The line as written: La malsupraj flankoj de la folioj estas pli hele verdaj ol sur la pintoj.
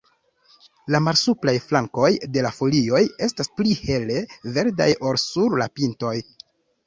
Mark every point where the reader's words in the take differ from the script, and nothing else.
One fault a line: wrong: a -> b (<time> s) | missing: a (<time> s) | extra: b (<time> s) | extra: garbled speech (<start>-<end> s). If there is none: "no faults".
no faults